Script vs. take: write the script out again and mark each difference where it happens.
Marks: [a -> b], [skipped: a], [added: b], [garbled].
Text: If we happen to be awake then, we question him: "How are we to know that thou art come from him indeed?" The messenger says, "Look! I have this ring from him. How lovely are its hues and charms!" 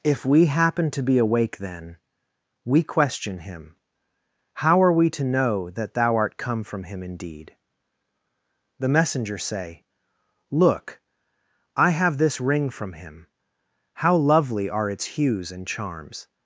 If we happen to be awake then, we question him: "How are we to know that thou art come from him indeed?" The messenger [says, -> say] "Look! I have this ring from him. How lovely are its hues and charms!"